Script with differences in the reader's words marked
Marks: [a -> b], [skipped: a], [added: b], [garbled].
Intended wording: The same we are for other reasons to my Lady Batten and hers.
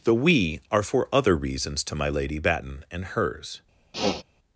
The [skipped: same] we are for other reasons to my Lady Batten and hers.